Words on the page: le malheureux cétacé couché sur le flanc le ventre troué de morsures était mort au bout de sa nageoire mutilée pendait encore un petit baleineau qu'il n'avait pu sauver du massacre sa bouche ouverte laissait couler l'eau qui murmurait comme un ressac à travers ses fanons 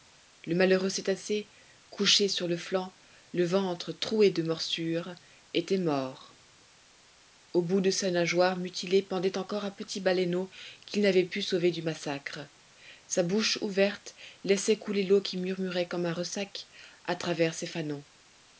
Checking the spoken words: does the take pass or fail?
pass